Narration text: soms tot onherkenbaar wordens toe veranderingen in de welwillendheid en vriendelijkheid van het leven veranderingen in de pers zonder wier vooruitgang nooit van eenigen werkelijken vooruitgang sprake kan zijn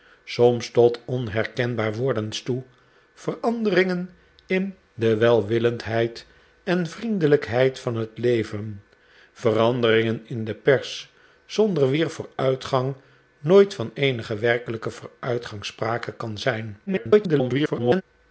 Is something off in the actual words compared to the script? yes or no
yes